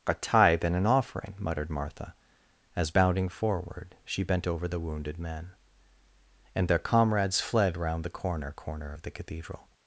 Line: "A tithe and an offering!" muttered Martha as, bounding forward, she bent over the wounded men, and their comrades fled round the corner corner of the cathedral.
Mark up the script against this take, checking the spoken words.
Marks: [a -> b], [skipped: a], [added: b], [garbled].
"A tithe and an offering!" muttered Martha as, bounding forward, she bent over the wounded men, and their comrades fled round the corner corner of the cathedral.